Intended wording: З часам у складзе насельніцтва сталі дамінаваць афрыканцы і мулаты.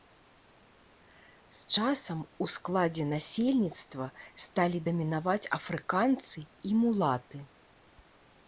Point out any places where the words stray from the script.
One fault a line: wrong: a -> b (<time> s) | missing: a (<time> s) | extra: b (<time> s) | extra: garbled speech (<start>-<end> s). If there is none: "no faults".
no faults